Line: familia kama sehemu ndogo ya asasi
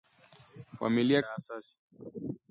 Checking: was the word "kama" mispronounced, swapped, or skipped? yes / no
yes